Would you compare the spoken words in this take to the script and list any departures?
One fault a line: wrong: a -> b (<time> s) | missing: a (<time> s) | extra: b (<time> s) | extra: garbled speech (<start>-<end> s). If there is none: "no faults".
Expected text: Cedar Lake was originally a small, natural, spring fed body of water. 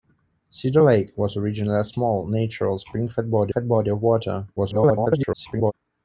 extra: fed body (3.5 s)
extra: garbled speech (4.6-5.7 s)